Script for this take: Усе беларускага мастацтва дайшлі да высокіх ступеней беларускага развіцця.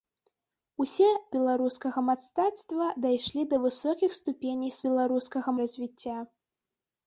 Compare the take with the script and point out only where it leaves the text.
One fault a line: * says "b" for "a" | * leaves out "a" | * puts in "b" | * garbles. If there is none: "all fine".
all fine